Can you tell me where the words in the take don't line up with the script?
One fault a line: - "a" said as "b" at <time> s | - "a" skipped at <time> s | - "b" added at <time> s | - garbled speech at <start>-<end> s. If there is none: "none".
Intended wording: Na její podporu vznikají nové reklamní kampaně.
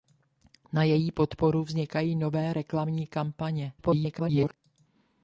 - garbled speech at 3.8-4.6 s